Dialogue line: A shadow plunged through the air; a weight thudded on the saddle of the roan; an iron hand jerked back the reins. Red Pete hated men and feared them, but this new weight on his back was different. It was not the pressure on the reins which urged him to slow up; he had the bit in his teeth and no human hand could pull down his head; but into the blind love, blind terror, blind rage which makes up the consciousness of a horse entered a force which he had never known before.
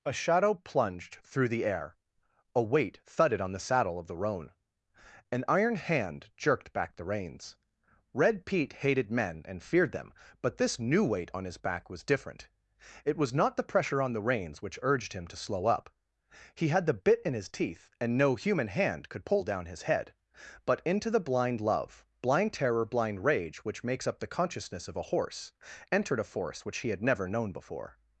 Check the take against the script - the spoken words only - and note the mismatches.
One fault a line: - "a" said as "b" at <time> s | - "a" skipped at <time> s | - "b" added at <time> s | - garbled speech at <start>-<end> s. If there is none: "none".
none